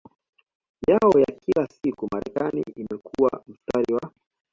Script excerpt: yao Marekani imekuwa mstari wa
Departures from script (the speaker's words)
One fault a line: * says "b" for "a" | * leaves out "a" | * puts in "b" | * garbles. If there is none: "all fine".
* puts in "ya kila siku"